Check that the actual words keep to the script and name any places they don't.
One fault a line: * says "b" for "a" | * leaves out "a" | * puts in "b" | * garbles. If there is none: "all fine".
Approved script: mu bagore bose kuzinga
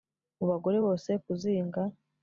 all fine